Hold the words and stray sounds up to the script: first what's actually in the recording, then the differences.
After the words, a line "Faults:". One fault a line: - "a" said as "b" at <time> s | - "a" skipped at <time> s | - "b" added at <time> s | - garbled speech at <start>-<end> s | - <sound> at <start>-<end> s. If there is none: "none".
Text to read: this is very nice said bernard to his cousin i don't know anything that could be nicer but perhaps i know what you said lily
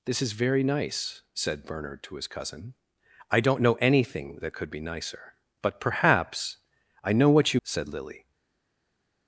this is very nice said bernard to his cousin i don't know anything that could be nicer but perhaps i know what you said lily
Faults:
none